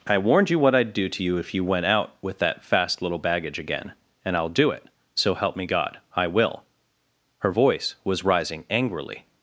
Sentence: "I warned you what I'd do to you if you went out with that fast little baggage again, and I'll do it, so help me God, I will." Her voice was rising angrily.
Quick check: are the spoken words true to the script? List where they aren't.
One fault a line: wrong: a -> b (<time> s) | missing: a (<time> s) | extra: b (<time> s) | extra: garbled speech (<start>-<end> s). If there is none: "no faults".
no faults